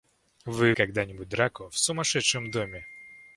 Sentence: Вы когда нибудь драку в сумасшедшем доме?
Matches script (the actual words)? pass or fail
pass